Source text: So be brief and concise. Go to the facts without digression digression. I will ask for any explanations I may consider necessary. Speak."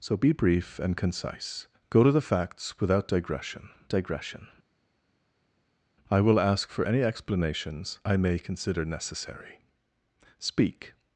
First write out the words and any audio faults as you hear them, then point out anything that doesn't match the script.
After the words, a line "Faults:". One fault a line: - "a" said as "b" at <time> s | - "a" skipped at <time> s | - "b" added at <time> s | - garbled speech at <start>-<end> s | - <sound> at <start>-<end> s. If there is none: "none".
So be brief and concise. Go to the facts without digression digression. I will ask for any explanations I may consider necessary. Speak."
Faults:
none